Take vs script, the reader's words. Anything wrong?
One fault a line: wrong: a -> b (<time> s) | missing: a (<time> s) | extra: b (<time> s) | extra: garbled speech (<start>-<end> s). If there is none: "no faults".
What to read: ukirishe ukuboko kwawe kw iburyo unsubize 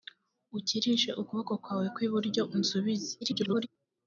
extra: garbled speech (3.2-3.7 s)